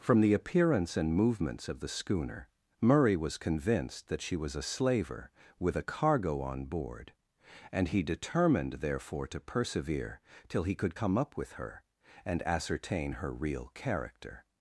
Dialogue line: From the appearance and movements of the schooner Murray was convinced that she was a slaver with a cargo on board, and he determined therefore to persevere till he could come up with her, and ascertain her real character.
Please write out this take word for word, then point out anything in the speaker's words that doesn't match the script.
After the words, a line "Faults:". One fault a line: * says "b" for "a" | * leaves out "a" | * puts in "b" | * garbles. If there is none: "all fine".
From the appearance and movements of the schooner Murray was convinced that she was a slaver with a cargo on board, and he determined therefore to persevere till he could come up with her, and ascertain her real character.
Faults:
all fine